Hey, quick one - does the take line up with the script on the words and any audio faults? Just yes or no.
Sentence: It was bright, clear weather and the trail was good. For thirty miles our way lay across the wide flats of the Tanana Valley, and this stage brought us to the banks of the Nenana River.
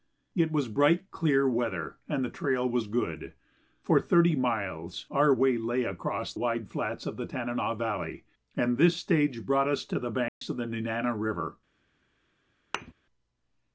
no